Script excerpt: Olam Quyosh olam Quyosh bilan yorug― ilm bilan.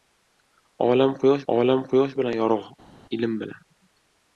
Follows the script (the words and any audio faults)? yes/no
yes